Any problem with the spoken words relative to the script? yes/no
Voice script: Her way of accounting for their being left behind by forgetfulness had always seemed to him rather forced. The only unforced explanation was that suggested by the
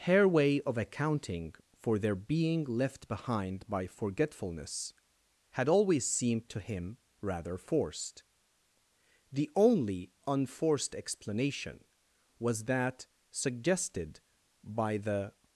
no